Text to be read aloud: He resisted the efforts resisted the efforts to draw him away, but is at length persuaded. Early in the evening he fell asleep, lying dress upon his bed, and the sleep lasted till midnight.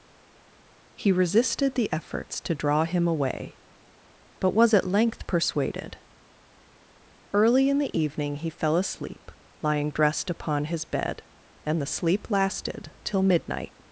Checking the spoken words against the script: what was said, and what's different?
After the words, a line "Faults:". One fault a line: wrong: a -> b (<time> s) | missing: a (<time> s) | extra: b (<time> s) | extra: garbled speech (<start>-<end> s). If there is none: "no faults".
He resisted the efforts to draw him away, but was at length persuaded. Early in the evening he fell asleep, lying dressed upon his bed, and the sleep lasted till midnight.
Faults:
missing: resisted the efforts (2.4 s)
wrong: is -> was (4.5 s)
wrong: dress -> dressed (9.9 s)